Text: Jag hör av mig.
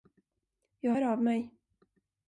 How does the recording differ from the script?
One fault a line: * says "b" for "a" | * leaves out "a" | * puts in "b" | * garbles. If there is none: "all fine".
all fine